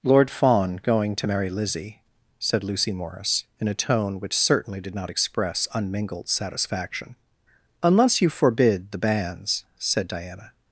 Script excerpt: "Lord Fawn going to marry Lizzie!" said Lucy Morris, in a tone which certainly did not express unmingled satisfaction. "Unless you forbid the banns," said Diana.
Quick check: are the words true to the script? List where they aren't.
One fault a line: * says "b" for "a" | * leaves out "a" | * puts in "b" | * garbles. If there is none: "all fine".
all fine